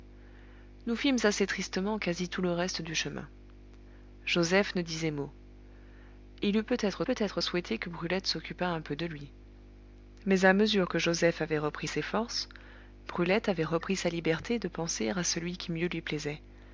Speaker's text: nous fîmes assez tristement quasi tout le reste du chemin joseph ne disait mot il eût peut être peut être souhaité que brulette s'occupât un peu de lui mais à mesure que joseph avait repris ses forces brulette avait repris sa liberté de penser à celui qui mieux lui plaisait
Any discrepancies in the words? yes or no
no